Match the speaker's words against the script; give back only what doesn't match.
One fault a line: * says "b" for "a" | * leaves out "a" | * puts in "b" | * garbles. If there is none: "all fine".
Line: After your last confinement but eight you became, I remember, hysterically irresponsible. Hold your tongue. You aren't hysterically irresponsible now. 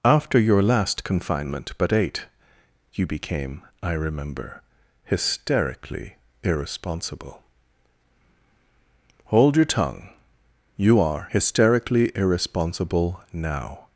* says "are" for "aren't"